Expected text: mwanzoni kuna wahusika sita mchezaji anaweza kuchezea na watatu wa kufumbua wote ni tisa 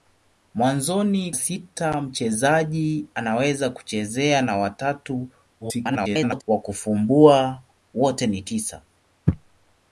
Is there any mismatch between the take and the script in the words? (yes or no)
yes